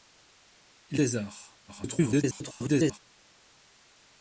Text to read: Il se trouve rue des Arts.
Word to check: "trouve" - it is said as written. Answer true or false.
false